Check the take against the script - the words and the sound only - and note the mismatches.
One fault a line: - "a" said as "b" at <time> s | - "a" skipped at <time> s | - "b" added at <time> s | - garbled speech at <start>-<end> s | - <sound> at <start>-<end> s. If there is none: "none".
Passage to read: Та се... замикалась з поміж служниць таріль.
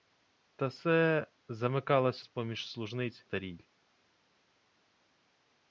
none